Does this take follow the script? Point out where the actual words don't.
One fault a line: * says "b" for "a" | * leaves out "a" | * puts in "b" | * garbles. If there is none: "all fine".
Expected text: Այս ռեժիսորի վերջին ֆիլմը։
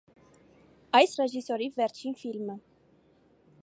all fine